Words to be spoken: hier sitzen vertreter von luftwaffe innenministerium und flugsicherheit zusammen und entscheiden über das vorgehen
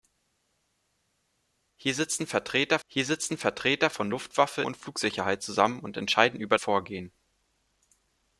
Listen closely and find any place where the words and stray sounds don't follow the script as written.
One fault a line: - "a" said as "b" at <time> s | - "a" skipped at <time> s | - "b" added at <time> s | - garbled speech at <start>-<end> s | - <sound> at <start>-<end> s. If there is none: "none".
- "hier sitzen vertreter" added at 2.9 s
- "innenministerium" skipped at 4.6 s
- "das" skipped at 6.6 s